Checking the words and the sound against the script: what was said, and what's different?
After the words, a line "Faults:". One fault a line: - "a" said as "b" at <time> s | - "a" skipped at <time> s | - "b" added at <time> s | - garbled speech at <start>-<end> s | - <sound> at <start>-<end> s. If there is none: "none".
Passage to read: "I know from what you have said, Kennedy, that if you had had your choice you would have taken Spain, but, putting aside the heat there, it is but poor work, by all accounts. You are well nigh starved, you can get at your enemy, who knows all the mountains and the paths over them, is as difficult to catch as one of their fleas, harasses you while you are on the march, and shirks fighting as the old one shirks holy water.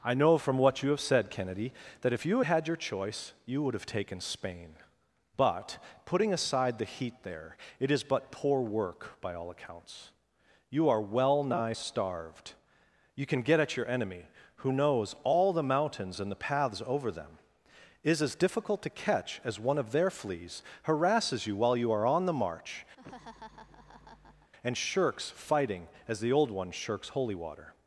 "I know from what you have said, Kennedy, that if you had had your choice you would have taken Spain, but, putting aside the heat there, it is but poor work, by all accounts. You are well nigh starved, you can get at your enemy, who knows all the mountains and the paths over them, is as difficult to catch as one of their fleas, harasses you while you are on the march, and shirks fighting as the old one shirks holy water.
Faults:
- laugh at 23.0-24.5 s